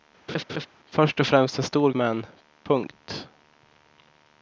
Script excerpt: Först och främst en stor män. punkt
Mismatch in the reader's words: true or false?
false